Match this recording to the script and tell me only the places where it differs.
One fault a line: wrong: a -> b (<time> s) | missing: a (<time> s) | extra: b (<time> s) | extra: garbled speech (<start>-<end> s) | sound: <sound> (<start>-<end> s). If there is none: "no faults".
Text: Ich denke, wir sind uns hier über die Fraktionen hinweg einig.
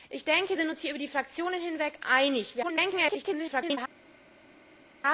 missing: wir (0.6 s)
extra: garbled speech (2.6-3.8 s)